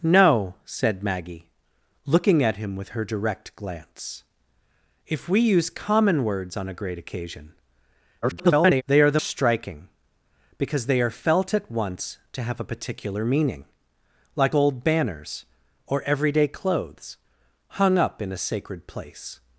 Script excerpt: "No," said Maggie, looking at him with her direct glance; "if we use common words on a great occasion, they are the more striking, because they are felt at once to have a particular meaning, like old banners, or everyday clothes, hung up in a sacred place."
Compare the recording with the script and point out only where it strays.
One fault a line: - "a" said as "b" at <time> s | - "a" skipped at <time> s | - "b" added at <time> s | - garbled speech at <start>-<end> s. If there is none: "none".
- garbled speech at 8.2-8.8 s
- "more" skipped at 9.2 s